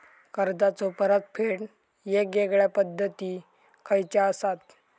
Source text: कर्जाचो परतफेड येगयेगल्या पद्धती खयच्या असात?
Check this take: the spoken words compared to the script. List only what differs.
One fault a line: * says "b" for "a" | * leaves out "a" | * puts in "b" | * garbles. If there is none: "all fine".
all fine